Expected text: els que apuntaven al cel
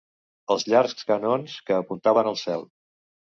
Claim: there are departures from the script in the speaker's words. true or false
true